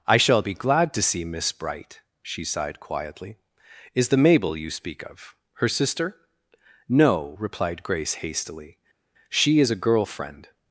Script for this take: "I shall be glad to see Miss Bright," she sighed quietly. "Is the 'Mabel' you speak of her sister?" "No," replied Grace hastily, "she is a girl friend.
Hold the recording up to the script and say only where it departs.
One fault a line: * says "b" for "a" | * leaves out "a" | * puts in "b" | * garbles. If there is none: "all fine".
all fine